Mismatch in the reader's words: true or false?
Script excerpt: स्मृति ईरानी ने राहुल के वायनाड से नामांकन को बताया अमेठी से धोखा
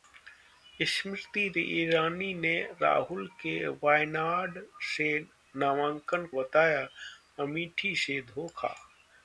true